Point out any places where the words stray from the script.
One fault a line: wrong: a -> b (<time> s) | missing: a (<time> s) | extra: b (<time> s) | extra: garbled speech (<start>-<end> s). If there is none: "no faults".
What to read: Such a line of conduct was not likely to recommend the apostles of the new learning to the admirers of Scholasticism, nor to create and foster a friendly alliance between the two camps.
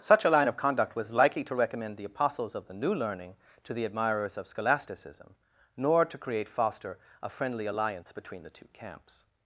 missing: not (1.1 s)
missing: and (6.5 s)